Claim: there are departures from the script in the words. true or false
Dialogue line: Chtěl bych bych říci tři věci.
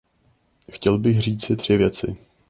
true